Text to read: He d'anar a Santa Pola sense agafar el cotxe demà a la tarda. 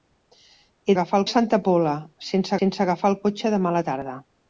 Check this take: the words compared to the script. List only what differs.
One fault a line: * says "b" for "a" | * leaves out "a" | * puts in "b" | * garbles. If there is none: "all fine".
* says "agafar" for "d'anar"
* puts in "sense"